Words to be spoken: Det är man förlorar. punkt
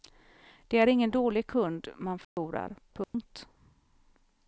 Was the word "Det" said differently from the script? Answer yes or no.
no